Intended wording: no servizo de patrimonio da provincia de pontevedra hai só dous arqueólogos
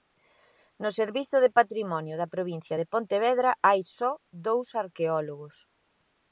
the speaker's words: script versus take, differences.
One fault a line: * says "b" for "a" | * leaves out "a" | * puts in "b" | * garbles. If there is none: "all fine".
all fine